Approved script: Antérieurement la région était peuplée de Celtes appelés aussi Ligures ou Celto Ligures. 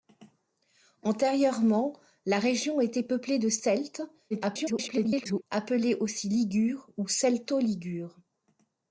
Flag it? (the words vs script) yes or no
yes